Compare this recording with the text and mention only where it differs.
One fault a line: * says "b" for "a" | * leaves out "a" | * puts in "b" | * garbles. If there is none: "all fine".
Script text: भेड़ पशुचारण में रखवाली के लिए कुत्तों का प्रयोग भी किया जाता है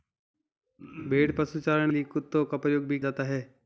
* leaves out "में रखवाली के"
* leaves out "किया"